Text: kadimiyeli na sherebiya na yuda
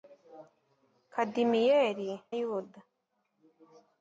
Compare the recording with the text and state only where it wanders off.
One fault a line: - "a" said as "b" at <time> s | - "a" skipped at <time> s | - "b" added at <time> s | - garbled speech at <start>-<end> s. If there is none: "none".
- "na sherebiya na" skipped at 2.1 s